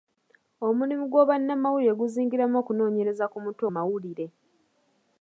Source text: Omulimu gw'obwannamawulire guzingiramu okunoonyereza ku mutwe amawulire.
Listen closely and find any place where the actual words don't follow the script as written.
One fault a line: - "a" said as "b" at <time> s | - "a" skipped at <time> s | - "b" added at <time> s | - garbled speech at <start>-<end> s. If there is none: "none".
none